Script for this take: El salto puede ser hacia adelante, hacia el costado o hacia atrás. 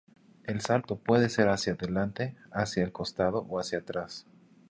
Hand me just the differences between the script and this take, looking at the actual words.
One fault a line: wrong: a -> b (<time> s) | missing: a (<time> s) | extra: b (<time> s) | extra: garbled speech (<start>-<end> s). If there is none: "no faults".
no faults